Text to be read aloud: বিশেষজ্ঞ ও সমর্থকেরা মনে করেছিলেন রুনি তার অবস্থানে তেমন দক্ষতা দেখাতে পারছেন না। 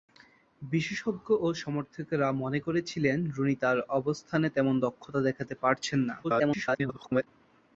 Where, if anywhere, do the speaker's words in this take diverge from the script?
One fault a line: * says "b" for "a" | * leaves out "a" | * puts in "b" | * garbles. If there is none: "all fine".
* garbles